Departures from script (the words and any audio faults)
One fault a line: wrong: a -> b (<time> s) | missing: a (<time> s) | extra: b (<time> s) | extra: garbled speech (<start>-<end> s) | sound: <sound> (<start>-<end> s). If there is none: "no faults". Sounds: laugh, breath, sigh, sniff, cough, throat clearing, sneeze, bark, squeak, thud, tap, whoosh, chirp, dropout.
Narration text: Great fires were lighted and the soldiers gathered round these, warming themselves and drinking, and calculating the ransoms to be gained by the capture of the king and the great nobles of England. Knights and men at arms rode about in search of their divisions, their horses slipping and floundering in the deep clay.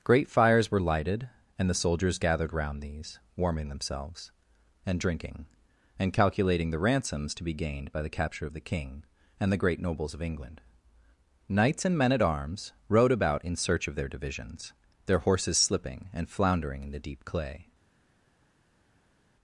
no faults